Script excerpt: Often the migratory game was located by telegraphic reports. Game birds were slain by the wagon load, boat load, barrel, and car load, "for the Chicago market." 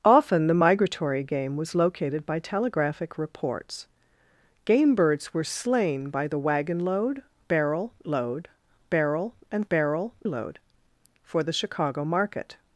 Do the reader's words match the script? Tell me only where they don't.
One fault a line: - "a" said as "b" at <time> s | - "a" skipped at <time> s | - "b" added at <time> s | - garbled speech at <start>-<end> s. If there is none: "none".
- "boat" said as "barrel" at 7.5 s
- "car" said as "barrel" at 9.7 s